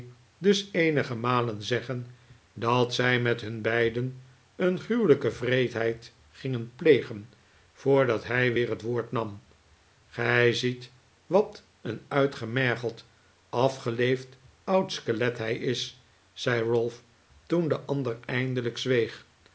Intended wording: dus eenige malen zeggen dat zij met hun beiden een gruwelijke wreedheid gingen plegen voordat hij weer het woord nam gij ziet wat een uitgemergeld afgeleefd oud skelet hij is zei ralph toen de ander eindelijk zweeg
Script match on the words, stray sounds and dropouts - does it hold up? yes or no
yes